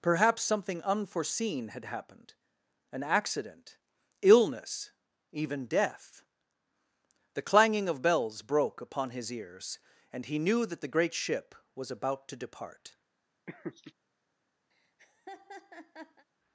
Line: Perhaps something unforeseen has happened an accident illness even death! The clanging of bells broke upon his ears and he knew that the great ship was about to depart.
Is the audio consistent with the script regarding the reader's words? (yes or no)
no